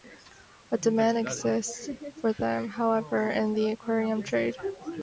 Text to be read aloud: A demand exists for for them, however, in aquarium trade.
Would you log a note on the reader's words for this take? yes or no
yes